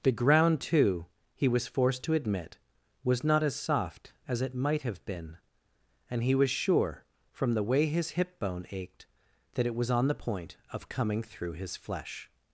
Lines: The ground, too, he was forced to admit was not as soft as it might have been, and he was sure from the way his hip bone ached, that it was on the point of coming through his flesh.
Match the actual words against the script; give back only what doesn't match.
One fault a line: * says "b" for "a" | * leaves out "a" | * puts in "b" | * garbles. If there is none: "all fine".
all fine